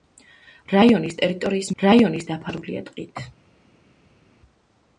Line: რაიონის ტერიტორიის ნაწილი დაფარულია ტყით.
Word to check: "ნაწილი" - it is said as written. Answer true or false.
false